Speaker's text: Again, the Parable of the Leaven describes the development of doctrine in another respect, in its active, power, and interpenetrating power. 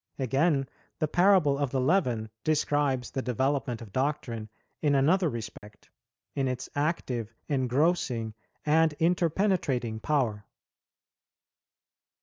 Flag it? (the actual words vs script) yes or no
yes